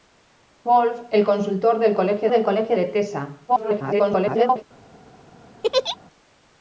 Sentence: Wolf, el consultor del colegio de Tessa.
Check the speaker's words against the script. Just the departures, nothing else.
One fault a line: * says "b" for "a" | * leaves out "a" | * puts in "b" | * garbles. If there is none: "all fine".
* puts in "del colegio"
* garbles